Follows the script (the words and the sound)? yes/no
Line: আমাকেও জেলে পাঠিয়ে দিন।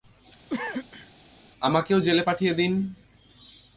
no